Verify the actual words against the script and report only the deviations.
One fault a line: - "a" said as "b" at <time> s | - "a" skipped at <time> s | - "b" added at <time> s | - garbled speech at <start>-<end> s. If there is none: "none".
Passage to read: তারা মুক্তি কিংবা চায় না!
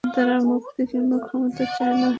- "ক্ষমতা" added at 1.2 s